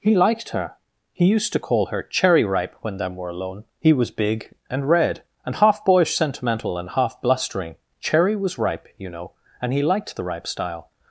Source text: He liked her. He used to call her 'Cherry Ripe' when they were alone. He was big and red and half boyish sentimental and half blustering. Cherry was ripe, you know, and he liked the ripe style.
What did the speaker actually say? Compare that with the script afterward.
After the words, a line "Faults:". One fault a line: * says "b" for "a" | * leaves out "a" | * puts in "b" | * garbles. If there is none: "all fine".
He liked her. He used to call her 'Cherry Ripe' when them were alone. He was big and red and half boyish sentimental and half blustering. Cherry was ripe, you know, and he liked the ripe style.
Faults:
* says "them" for "they"